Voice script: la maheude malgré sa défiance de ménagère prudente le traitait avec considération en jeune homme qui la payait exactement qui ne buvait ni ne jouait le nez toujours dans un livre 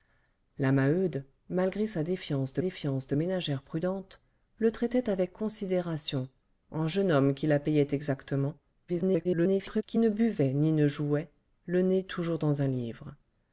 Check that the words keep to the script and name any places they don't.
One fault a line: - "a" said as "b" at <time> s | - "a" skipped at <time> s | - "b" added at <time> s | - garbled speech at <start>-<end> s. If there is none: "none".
- "défiance de" added at 2.6 s
- garbled speech at 8.9-9.8 s